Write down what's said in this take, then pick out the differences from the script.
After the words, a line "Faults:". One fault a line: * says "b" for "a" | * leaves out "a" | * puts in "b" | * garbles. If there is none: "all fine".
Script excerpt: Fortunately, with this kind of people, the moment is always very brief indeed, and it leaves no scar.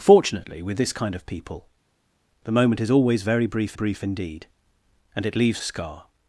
Fortunately, with this kind of people, the moment is always very brief brief indeed, and it leaves scar.
Faults:
* puts in "brief"
* leaves out "no"